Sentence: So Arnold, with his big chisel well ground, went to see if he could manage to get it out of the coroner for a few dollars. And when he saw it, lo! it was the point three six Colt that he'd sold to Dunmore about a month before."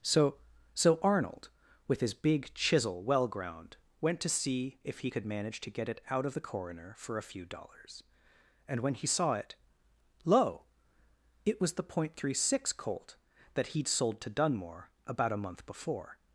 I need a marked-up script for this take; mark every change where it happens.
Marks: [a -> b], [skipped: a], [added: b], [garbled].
So [added: so] Arnold, with his big chisel well ground, went to see if he could manage to get it out of the coroner for a few dollars. And when he saw it, lo! it was the point three six Colt that he'd sold to Dunmore about a month before."